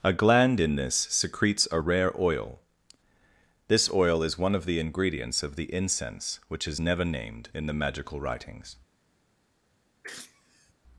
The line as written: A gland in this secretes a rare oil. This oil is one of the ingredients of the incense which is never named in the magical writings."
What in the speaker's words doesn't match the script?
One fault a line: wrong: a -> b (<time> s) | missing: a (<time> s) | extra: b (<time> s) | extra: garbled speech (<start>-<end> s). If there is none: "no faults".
no faults